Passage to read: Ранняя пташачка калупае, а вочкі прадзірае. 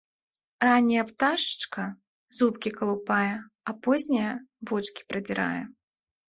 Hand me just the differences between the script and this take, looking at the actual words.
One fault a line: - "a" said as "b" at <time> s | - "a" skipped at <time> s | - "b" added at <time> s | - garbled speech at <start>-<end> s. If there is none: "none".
- "зубкі" added at 2.4 s
- "позняя" added at 3.9 s